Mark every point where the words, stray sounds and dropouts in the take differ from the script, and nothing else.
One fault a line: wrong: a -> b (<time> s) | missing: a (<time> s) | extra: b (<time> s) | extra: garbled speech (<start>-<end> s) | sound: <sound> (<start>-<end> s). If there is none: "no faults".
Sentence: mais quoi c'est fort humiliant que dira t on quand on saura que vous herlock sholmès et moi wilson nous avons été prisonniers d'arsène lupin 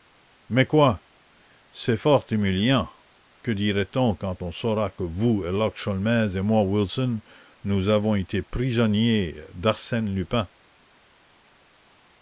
no faults